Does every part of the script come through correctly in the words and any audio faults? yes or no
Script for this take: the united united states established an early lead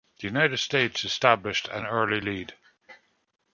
no